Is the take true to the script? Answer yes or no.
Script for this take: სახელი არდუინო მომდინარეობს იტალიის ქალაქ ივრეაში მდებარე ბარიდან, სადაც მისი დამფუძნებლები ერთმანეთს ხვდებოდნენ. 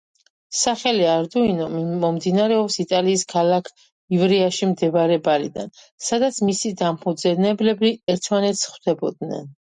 yes